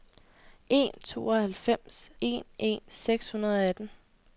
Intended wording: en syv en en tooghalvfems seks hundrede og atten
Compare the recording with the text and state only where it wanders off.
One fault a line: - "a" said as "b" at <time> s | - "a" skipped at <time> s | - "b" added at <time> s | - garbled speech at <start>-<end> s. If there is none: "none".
- "syv" said as "tooghalvfems" at 1.0 s
- "tooghalvfems" skipped at 2.8 s